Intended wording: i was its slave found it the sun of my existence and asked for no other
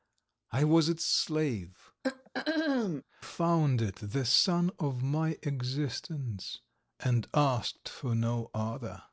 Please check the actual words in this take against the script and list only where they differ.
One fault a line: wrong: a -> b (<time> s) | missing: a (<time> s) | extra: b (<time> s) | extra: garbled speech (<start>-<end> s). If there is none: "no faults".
no faults